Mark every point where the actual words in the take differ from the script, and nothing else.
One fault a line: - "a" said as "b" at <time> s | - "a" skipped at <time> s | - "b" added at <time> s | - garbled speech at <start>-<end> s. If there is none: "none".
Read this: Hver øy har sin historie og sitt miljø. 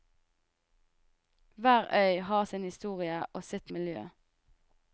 none